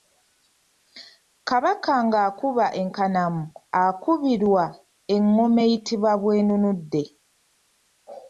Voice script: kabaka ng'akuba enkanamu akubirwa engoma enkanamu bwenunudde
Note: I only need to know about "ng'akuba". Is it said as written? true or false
true